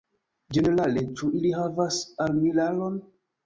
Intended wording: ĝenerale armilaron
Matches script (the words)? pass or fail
fail